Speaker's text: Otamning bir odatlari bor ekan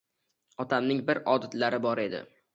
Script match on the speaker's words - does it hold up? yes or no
no